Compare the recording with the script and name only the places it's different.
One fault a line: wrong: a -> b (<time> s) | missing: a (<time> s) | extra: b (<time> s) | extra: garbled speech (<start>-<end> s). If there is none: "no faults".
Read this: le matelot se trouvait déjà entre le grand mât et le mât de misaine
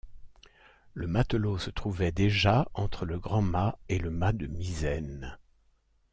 no faults